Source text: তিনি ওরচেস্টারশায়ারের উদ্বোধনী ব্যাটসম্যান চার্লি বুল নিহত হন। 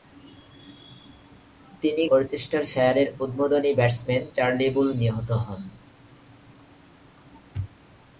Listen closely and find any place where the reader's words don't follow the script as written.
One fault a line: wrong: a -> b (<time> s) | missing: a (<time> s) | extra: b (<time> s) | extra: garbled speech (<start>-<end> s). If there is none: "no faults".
no faults